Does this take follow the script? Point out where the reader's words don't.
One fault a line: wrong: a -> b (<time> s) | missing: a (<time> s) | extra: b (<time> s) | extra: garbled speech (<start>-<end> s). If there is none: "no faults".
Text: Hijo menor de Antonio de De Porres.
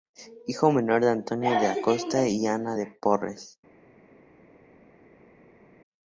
extra: Acosta y Ana (1.7 s)